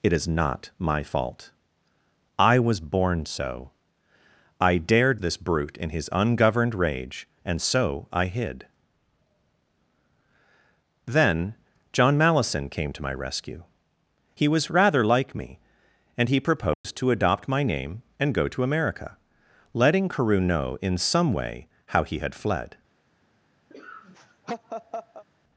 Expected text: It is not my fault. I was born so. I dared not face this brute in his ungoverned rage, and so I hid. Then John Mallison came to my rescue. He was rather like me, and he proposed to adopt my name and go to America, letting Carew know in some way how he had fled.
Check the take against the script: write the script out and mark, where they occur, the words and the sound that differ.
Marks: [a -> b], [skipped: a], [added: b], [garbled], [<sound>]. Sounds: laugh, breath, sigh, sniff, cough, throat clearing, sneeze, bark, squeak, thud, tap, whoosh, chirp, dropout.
It is not my fault. I was born so. I dared [skipped: not face] this brute in his ungoverned rage, and so I hid. Then John Mallison came to my rescue. He was rather like me, and he proposed [dropout] to adopt my name and go to America, letting Carew know in some way how he had fled. [laugh]